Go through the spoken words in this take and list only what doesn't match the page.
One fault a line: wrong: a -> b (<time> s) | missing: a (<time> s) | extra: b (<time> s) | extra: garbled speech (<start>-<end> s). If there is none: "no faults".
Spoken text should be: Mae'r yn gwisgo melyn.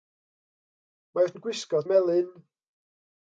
no faults